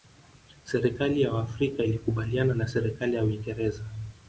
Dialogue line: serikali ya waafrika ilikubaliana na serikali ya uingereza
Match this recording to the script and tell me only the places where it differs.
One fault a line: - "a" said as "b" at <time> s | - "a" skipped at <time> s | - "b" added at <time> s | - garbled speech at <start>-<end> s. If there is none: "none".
none